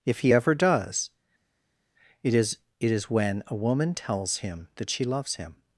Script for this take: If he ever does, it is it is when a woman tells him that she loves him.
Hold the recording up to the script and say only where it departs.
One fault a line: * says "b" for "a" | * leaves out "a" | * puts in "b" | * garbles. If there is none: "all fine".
all fine